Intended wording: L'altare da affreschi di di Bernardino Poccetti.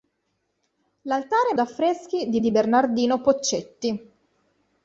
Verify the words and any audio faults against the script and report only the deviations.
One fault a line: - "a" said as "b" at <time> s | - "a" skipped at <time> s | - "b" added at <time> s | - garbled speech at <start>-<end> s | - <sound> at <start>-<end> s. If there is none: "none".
none